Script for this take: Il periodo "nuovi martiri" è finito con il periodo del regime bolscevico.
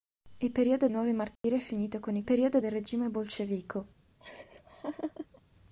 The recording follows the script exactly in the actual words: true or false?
true